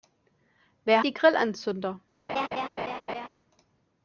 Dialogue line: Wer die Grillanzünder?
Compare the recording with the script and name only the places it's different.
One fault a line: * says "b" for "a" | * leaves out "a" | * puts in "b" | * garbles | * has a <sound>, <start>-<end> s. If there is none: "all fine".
* has a laugh, 2.3-3.3 s